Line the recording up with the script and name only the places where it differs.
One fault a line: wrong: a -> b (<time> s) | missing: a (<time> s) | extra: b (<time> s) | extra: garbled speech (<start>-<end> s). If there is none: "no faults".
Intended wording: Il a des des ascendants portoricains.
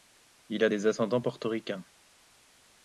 missing: des (0.9 s)